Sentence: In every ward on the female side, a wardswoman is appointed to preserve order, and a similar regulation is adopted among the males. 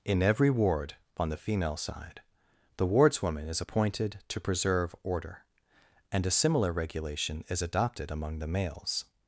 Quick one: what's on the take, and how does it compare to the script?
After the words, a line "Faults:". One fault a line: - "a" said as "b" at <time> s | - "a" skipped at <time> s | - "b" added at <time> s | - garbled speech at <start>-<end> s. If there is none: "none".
In every ward on the female side, the wardswoman is appointed to preserve order, and a similar regulation is adopted among the males.
Faults:
- "a" said as "the" at 2.8 s